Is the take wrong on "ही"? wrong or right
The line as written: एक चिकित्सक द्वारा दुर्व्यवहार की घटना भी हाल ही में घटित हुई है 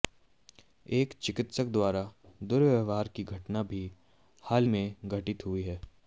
wrong